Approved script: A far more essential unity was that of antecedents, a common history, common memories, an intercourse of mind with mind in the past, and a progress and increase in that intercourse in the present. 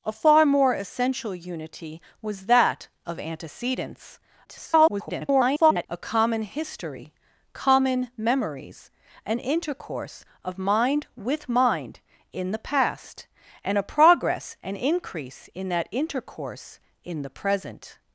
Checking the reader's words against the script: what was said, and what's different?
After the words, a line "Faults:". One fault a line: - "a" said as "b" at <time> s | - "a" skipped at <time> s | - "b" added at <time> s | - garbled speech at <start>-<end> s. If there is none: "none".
A far more essential unity was that of antecedents, [garbled] a common history, common memories, an intercourse of mind with mind in the past, and a progress and increase in that intercourse in the present.
Faults:
- garbled speech at 4.4-5.9 s